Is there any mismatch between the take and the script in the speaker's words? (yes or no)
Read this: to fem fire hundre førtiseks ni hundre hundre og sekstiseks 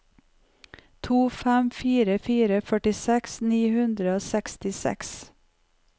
yes